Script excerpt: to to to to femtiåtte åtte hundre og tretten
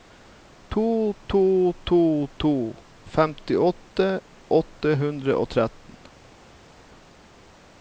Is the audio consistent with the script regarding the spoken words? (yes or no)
yes